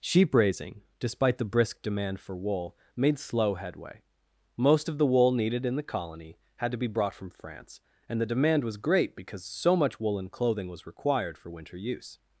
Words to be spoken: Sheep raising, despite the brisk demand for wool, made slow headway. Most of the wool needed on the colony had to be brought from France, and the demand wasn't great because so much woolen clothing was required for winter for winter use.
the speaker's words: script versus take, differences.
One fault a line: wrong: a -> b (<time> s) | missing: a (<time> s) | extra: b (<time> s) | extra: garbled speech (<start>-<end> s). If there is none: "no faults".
wrong: on -> in (5.6 s)
wrong: wasn't -> was (8.6 s)
missing: for winter (11.8 s)